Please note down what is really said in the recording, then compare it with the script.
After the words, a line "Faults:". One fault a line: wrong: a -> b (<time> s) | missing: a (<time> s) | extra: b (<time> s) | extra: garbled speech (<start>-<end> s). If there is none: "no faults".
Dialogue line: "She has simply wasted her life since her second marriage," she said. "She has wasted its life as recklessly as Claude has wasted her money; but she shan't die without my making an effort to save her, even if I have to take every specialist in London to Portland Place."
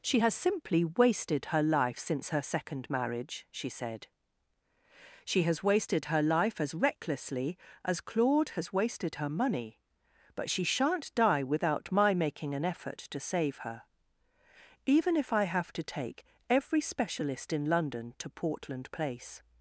"She has simply wasted her life since her second marriage," she said. "She has wasted her life as recklessly as Claude has wasted her money; but she shan't die without my making an effort to save her, even if I have to take every specialist in London to Portland Place."
Faults:
wrong: its -> her (6.0 s)